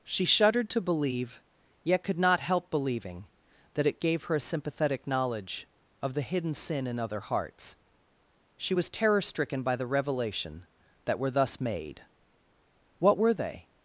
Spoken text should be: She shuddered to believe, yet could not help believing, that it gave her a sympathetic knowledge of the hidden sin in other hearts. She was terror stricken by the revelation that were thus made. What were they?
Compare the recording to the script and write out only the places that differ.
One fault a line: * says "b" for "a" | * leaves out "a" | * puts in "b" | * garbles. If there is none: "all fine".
all fine